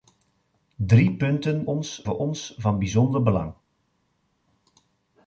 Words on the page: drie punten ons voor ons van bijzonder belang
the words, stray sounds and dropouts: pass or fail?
pass